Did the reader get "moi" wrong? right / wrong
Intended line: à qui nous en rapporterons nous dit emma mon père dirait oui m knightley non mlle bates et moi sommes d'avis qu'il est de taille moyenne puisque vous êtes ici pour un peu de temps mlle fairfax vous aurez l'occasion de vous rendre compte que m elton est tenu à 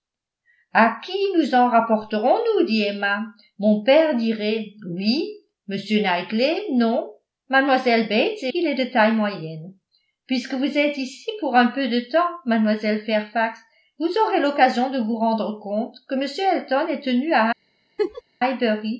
wrong